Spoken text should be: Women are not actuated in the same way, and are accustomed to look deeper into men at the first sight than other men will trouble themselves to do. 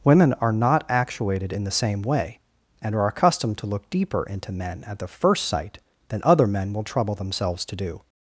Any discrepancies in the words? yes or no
no